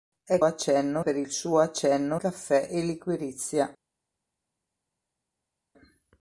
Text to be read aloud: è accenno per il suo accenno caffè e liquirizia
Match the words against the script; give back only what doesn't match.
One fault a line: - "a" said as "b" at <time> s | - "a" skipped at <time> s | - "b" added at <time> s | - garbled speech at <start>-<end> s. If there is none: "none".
none